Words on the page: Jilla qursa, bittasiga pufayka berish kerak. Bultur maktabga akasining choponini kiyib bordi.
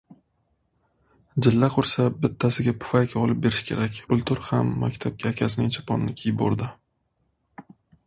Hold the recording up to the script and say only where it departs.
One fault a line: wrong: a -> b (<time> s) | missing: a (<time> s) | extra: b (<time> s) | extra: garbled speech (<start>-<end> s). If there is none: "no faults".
extra: olib (3.2 s)
extra: ham (4.5 s)